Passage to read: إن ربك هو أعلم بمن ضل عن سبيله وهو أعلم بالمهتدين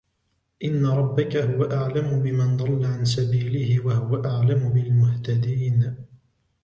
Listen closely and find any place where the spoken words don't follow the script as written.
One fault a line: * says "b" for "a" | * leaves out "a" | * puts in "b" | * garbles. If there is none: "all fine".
all fine